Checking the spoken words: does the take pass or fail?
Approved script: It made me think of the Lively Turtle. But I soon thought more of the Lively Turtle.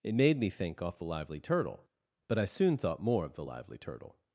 fail